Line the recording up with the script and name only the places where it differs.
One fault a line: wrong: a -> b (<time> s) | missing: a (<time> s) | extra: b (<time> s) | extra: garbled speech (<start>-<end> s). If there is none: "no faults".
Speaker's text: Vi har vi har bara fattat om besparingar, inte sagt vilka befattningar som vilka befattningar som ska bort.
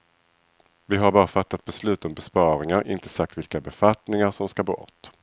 missing: vi har (1.1 s)
extra: beslut (1.6 s)
missing: vilka befattningar som (4.5 s)